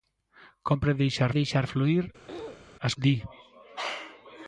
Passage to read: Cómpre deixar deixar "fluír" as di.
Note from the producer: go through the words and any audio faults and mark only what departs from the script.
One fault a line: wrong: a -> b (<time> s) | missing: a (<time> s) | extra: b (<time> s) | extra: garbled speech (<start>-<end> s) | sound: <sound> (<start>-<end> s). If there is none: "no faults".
sound: throat clearing (2.3-2.7 s)